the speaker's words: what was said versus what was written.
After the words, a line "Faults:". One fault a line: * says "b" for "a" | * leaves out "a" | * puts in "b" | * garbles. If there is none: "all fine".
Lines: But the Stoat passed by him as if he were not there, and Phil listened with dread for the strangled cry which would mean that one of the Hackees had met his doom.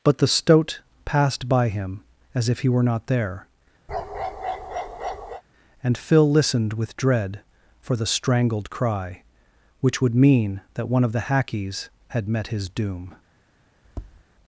But the Stoat passed by him as if he were not there, and Phil listened with dread for the strangled cry which would mean that one of the Hackees had met his doom.
Faults:
all fine